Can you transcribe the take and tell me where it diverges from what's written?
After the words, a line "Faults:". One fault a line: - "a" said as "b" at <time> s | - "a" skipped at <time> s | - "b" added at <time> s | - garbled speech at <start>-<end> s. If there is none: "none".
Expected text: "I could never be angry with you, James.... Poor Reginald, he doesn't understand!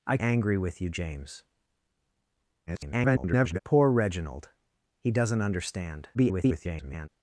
"I angry with you, James.... [garbled] Poor Reginald, he doesn't understand! [garbled]
Faults:
- "could never be" skipped at 0.2 s
- garbled speech at 2.7-3.6 s
- garbled speech at 6.1-7.1 s